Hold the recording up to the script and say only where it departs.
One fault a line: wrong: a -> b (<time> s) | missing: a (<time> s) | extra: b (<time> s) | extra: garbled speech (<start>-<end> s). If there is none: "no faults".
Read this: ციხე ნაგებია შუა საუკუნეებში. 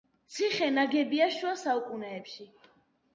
no faults